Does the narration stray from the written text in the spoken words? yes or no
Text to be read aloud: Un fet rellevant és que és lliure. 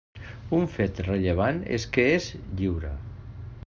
no